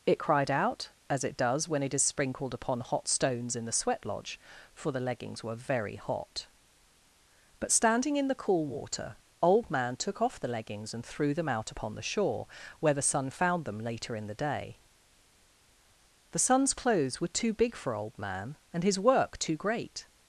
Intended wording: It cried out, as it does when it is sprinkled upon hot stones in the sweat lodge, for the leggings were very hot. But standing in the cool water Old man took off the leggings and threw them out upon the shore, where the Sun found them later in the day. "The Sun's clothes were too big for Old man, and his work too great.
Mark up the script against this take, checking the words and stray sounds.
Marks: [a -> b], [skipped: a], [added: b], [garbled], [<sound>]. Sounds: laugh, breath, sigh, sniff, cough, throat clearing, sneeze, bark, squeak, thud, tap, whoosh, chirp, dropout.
It cried out, as it does when it is sprinkled upon hot stones in the sweat lodge, for the leggings were very hot. But standing in the cool water Old man took off the leggings and threw them out upon the shore, where the Sun found them later in the day. "The Sun's clothes were too big for Old man, and his work too great.